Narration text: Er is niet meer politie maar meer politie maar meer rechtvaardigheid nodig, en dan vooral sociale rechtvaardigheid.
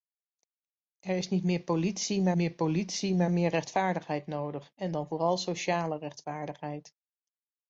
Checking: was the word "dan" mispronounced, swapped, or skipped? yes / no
no